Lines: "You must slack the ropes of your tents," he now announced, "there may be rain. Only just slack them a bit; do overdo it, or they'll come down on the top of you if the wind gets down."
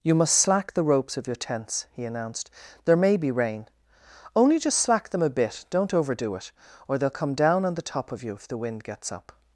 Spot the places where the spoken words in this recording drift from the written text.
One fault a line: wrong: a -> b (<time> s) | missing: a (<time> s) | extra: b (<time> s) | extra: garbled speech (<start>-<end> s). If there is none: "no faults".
missing: now (2.0 s)
wrong: do -> don't (5.7 s)
wrong: down -> up (9.1 s)